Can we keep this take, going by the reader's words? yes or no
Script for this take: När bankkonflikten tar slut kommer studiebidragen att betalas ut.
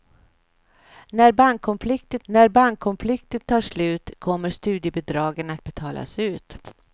no